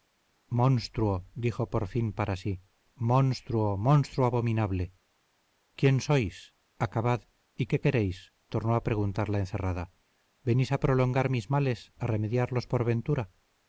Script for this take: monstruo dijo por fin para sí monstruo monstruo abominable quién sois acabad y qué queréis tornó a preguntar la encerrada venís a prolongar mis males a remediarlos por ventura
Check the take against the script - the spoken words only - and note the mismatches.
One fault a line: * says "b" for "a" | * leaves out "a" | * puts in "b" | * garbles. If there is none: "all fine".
all fine